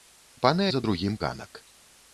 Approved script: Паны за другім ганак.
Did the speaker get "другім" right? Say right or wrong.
right